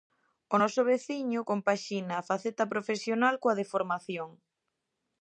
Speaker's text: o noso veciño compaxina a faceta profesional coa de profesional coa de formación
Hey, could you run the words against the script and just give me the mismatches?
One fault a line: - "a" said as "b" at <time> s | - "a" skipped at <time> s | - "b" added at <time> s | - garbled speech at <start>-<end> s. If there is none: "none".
- "profesional coa de" skipped at 3.7 s